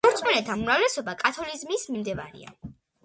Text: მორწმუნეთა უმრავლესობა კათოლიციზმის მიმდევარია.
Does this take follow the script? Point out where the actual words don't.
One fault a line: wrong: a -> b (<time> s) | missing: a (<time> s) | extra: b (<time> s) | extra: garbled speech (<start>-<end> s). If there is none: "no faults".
no faults